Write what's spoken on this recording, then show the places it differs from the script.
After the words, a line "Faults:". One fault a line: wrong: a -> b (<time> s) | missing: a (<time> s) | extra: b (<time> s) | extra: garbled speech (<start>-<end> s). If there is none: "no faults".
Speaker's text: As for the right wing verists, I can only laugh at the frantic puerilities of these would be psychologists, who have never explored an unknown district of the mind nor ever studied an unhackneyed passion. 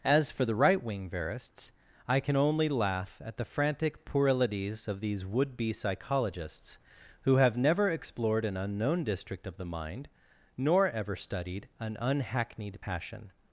As for the right wing verists, I can only laugh at the frantic puerilities of these would be psychologists, who have never explored an unknown district of the mind nor ever studied an unhackneyed passion.
Faults:
no faults